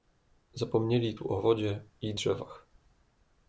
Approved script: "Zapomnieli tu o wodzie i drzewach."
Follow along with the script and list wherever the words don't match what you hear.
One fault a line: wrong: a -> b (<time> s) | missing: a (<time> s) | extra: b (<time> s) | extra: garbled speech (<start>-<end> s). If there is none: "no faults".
no faults